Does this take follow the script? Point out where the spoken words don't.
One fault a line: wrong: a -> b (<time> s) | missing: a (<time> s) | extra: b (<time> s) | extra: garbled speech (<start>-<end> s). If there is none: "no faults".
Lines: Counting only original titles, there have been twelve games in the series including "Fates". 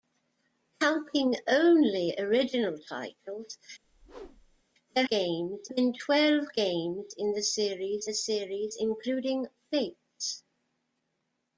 wrong: have -> games (5.1 s)
extra: the series (8.0 s)